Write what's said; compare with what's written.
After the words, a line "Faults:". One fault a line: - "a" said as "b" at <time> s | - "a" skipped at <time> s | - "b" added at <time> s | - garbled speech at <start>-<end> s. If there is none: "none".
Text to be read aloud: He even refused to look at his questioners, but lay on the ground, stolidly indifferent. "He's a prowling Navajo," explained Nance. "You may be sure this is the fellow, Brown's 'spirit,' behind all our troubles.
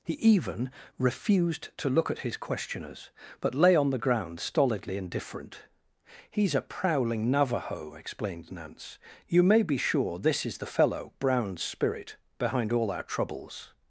He even refused to look at his questioners, but lay on the ground, stolidly indifferent. "He's a prowling Navajo," explained Nance. "You may be sure this is the fellow, Brown's 'spirit,' behind all our troubles.
Faults:
none